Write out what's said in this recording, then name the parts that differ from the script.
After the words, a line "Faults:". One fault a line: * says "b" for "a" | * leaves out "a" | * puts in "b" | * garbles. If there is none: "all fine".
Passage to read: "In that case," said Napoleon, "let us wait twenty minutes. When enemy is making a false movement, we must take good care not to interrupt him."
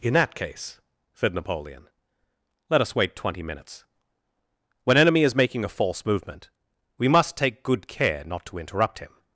"In that case," said Napoleon, "let us wait twenty minutes. When enemy is making a false movement, we must take good care not to interrupt him."
Faults:
all fine